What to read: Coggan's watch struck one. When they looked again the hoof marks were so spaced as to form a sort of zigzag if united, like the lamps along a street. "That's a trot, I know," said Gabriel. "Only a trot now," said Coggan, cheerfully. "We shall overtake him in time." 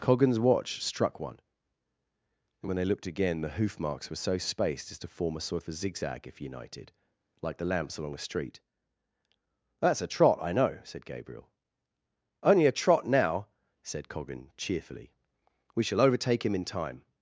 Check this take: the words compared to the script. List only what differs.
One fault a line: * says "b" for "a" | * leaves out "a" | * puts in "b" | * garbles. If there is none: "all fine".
* puts in "and"
* puts in "a"